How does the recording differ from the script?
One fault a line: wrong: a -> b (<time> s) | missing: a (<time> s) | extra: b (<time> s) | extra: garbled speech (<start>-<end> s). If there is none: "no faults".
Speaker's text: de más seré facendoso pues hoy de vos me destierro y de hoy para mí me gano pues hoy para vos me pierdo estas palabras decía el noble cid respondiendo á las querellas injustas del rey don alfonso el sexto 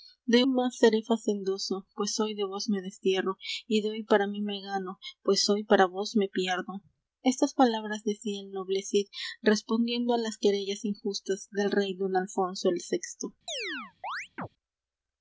no faults